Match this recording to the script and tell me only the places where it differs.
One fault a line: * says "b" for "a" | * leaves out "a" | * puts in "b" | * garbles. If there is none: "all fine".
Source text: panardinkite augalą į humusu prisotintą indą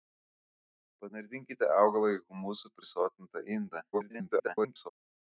* garbles